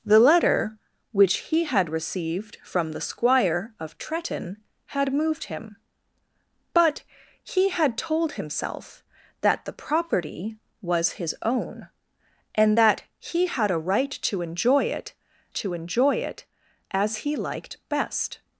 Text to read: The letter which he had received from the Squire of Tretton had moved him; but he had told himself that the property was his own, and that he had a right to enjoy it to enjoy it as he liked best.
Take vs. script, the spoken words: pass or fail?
pass